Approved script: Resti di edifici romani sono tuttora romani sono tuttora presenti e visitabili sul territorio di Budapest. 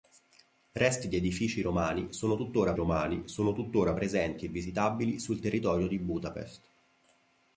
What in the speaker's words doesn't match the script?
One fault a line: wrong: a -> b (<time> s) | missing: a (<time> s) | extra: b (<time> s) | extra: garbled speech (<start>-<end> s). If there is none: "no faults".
no faults